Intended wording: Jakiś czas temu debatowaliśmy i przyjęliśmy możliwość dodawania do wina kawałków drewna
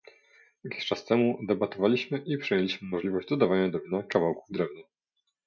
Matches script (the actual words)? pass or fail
pass